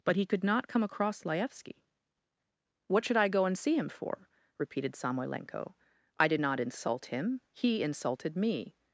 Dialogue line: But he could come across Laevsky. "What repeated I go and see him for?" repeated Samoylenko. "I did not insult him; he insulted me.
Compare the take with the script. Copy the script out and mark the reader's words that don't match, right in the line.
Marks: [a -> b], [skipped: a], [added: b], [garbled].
But he could [added: not] come across Laevsky. "What [repeated -> should] I go and see him for?" repeated Samoylenko. "I did not insult him; he insulted me.